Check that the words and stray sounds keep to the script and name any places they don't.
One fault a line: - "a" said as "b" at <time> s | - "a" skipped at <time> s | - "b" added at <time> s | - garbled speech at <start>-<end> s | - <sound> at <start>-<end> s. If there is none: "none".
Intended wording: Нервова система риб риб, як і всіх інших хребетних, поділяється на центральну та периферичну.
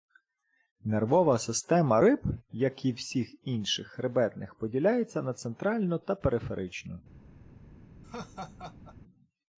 - "риб" skipped at 2.2 s
- laugh at 8.0-9.0 s